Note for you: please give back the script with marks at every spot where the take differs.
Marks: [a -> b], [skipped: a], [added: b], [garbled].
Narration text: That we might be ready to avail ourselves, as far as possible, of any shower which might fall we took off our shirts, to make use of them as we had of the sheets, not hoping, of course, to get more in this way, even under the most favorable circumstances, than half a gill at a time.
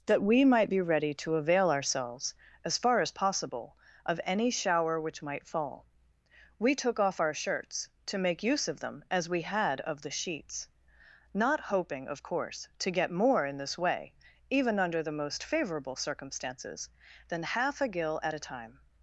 That we might be ready to avail ourselves, as far as possible, of any shower which might fall we took off our shirts, to make use of them as we had of the sheets, not hoping, of course, to get more in this way, even under the most favorable circumstances, than half a gill at a time.